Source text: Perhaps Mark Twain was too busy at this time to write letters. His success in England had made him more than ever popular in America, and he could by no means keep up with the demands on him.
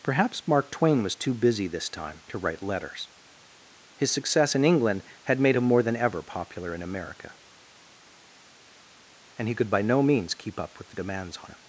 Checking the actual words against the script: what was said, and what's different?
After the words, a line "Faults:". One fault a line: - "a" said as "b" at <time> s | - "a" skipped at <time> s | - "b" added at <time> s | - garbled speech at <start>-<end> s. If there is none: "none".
Perhaps Mark Twain was too busy this time to write letters. His success in England had made him more than ever popular in America, and he could by no means keep up with the demands on him.
Faults:
- "at" skipped at 1.7 s